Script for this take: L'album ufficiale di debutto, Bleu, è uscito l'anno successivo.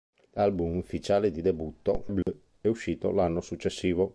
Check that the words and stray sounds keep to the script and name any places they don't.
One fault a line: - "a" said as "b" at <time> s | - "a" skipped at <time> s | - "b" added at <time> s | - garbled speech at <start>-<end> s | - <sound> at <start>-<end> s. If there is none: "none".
- dropout at 2.2-2.3 s